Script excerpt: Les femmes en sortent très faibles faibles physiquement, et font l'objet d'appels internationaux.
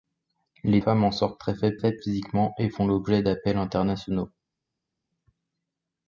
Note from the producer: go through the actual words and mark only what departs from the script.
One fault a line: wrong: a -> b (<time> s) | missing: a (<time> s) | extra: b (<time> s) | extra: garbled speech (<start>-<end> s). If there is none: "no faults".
no faults